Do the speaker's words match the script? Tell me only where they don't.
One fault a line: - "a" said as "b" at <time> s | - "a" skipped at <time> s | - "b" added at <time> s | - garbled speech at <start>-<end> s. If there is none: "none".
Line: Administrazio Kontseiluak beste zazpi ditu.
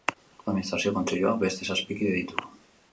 - "kide" added at 2.0 s